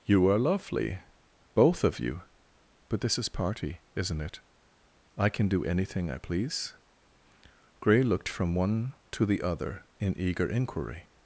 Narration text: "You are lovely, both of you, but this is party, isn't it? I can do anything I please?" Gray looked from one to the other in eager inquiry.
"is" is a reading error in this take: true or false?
false